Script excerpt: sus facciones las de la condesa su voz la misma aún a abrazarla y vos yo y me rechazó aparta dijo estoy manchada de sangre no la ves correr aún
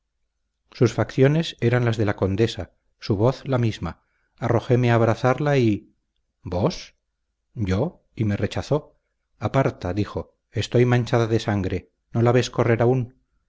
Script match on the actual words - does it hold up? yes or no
no